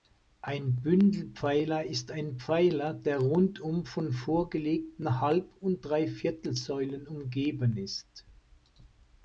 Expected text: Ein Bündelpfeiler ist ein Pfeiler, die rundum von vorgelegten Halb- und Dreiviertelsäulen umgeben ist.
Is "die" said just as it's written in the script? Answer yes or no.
no